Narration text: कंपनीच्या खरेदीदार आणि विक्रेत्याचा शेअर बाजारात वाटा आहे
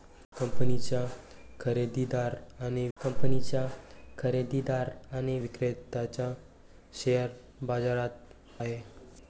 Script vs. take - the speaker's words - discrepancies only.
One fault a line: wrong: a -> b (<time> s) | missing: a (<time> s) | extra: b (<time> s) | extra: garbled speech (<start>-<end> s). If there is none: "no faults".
extra: कंपनीच्या खरेदीदार आणि (3.0 s)
missing: वाटा (8.6 s)